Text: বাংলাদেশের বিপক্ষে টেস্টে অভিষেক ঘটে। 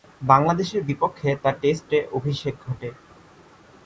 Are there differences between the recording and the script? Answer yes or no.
yes